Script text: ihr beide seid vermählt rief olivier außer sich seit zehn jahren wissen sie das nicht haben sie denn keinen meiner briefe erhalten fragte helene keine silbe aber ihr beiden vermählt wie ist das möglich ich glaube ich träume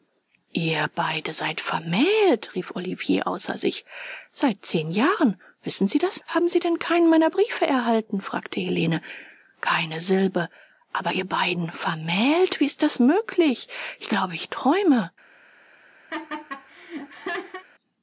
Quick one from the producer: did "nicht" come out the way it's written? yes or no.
no